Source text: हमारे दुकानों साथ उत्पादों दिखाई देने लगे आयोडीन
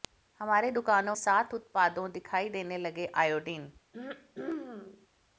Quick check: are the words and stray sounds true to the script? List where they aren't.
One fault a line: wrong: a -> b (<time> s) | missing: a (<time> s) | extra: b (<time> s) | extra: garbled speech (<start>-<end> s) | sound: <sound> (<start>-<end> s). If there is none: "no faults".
sound: throat clearing (3.9-5.1 s)